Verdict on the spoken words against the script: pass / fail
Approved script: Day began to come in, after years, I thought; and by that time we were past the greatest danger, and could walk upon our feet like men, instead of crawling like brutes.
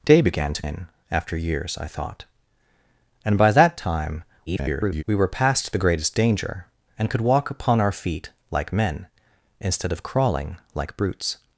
fail